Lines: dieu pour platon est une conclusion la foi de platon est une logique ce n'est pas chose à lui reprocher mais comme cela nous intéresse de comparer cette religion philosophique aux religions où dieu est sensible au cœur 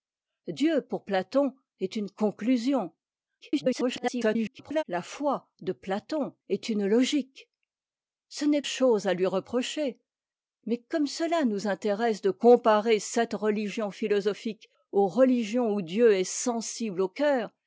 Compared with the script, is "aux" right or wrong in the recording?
right